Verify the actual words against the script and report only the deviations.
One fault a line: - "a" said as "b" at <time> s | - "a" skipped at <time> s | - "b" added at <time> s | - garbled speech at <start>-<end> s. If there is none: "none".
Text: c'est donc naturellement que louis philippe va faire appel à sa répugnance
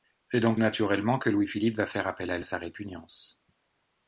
none